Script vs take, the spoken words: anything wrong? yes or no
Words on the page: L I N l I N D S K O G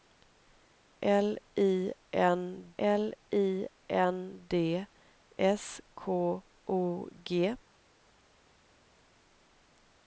no